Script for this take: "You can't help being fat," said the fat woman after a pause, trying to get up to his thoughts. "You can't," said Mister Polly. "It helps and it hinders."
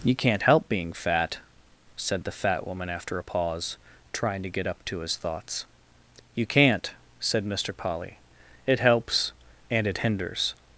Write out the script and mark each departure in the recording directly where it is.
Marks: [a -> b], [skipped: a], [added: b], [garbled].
"You can't help being fat," said the fat woman after a pause, trying to get up to his thoughts. "You can't," said Mister Polly. "It helps and it hinders."